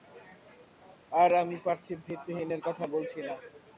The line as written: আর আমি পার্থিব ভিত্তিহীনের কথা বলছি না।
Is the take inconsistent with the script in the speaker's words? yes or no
no